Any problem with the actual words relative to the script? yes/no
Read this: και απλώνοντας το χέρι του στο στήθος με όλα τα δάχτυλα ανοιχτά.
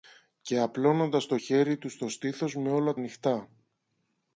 yes